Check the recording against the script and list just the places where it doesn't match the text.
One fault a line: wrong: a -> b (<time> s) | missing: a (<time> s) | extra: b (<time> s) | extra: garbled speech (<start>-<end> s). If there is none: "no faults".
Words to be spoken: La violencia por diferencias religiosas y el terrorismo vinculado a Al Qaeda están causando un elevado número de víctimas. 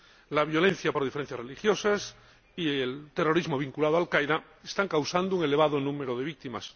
no faults